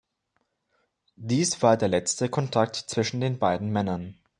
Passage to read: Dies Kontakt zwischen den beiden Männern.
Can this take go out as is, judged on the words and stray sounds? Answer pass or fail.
fail